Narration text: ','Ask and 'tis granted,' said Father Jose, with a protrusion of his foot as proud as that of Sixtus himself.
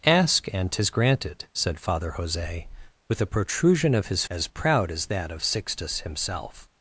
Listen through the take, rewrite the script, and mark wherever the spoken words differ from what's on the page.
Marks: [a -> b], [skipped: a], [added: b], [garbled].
','Ask and 'tis granted,' said Father Jose, with a protrusion of his [skipped: foot] as proud as that of Sixtus himself.